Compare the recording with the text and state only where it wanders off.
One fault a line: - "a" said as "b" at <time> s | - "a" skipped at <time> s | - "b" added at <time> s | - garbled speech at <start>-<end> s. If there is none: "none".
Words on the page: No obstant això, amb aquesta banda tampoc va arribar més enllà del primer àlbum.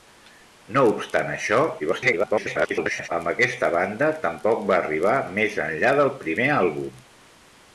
- garbled speech at 1.8-3.1 s